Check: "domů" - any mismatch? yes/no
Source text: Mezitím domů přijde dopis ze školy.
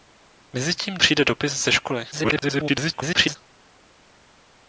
yes